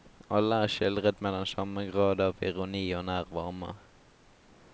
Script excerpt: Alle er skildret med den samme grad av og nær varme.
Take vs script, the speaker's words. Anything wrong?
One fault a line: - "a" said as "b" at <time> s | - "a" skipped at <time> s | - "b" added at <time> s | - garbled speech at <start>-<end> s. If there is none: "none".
- "ironi" added at 2.5 s